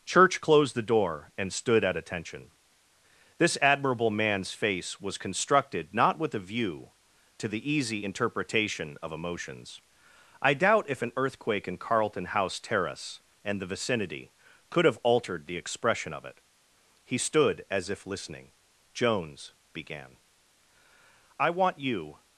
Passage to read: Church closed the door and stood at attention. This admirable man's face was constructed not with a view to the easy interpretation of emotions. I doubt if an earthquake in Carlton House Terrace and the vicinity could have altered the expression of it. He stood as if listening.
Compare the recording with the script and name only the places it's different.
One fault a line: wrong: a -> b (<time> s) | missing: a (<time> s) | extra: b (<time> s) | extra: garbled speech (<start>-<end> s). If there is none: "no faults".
extra: Jones began I want you (18.9 s)